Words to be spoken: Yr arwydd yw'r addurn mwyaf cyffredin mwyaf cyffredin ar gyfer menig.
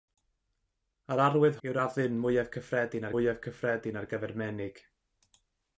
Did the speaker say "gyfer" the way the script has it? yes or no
yes